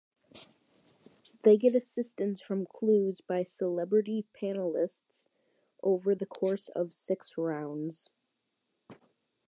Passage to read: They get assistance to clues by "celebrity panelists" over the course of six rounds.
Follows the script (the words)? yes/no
no